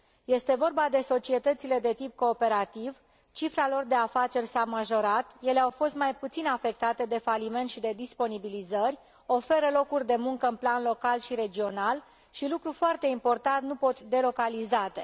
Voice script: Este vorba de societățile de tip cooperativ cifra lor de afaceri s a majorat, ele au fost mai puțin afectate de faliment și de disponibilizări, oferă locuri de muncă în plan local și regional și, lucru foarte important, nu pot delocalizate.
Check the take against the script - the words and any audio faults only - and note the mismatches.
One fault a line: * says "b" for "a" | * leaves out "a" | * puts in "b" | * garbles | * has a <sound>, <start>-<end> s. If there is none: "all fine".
all fine